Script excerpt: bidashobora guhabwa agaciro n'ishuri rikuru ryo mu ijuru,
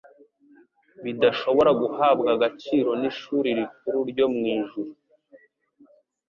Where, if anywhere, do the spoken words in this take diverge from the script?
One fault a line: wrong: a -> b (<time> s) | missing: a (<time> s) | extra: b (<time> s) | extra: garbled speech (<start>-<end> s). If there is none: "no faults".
no faults